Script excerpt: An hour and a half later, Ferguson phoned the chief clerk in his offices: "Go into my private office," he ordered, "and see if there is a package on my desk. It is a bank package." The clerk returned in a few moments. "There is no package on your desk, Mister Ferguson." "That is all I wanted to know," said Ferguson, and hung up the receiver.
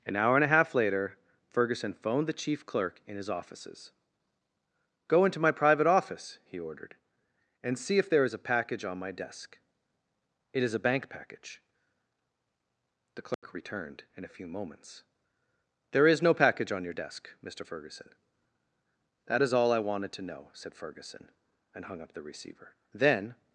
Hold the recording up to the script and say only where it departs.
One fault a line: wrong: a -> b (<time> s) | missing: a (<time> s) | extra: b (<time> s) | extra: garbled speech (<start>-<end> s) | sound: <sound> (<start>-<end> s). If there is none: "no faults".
sound: dropout (13.3-13.4 s)
extra: Then (22.9 s)